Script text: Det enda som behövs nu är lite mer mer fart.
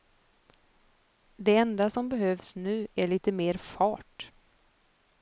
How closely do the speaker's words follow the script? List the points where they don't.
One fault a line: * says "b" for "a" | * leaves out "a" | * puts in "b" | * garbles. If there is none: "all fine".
* leaves out "mer"